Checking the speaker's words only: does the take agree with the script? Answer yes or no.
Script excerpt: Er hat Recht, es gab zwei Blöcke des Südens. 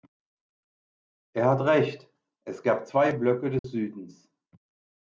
yes